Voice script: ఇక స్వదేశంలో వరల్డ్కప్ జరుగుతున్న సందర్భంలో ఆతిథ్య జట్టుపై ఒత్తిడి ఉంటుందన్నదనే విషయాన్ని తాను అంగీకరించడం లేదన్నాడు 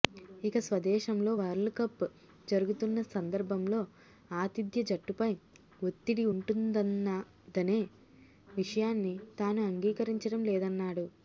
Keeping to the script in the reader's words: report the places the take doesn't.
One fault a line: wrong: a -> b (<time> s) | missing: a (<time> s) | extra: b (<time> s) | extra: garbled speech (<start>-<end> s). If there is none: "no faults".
no faults